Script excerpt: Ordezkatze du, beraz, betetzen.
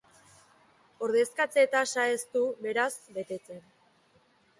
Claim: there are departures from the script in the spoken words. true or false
true